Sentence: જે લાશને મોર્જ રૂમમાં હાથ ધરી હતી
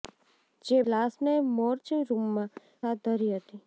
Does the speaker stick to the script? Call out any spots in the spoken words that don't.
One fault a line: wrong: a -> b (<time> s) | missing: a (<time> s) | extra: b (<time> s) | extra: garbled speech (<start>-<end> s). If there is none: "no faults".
no faults